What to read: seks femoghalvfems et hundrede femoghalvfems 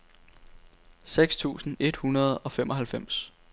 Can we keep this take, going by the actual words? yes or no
no